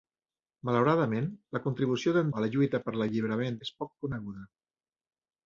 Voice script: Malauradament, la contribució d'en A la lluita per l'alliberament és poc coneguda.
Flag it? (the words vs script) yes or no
no